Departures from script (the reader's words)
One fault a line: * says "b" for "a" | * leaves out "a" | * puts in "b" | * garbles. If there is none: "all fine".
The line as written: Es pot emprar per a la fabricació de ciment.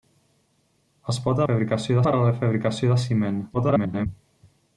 * says "fabricació" for "emprar"
* garbles